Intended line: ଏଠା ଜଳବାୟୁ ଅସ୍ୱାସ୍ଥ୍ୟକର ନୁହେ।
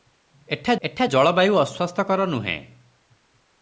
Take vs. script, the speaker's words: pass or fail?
fail